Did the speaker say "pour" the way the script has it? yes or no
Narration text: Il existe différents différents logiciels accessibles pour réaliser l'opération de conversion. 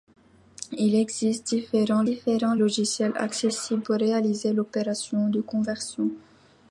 yes